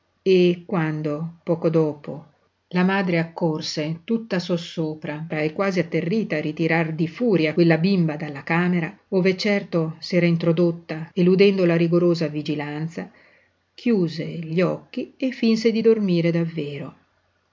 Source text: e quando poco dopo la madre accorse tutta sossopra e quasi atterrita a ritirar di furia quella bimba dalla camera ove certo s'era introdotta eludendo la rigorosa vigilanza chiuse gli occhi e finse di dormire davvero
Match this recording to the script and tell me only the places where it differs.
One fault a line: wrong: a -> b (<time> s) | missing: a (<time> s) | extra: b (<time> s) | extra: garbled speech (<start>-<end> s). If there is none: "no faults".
no faults